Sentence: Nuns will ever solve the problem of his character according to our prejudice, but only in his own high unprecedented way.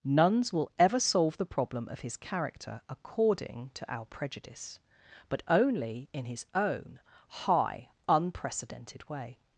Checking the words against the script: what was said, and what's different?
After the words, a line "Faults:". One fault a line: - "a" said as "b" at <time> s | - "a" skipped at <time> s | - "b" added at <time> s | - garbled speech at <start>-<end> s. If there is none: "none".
Nuns will ever solve the problem of his character according to our prejudice, but only in his own high unprecedented way.
Faults:
none